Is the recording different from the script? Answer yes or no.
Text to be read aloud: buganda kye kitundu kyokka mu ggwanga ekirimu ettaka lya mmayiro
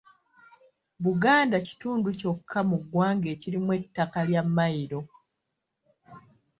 yes